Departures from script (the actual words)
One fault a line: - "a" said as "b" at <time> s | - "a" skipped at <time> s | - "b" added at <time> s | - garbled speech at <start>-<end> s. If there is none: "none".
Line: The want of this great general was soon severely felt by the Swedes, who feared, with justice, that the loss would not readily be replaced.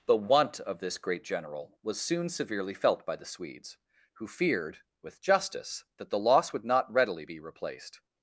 none